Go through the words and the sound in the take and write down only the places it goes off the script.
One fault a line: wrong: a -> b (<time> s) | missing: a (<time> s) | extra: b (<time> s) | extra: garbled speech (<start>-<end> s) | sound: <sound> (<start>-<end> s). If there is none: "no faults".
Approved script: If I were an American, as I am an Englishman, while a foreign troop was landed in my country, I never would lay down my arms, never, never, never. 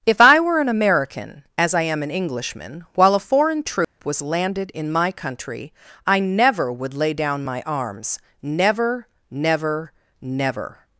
sound: dropout (3.8-4.0 s)